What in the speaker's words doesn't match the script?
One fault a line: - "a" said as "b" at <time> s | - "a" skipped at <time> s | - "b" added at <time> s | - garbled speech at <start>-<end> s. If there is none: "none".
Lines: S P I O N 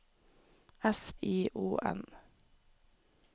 - "P" skipped at 1.1 s